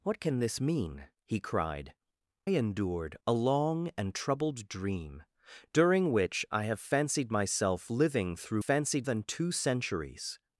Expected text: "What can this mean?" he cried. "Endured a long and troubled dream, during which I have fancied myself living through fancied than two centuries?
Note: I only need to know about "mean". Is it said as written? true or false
true